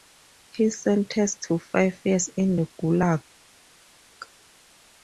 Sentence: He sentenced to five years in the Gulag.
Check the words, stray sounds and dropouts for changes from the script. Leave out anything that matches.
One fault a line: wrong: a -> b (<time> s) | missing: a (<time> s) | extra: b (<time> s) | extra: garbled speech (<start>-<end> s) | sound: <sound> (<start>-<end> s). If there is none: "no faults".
no faults